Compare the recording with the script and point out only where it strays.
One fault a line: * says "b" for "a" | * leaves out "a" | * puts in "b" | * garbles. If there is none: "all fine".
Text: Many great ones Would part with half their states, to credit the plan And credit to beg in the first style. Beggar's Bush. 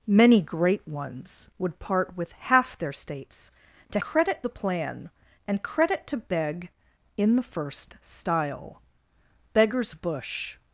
all fine